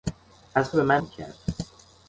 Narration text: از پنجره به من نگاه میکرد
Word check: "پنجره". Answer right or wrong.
wrong